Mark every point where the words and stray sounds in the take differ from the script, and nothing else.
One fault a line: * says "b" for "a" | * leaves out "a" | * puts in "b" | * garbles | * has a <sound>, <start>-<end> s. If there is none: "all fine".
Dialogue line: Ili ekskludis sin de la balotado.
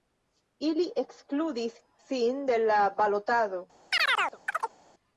* has a chirp, 3.9-4.7 s